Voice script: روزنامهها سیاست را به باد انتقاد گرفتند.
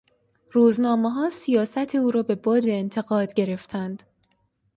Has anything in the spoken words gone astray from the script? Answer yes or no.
yes